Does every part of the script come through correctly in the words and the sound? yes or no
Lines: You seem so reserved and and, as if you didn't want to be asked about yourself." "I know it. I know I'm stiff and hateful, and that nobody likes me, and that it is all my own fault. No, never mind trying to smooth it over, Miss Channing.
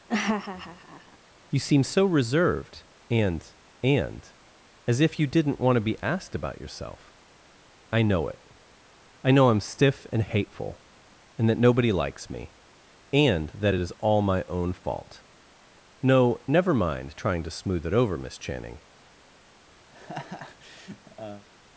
no